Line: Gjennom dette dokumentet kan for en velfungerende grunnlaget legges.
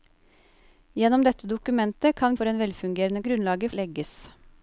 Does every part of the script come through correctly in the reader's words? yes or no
yes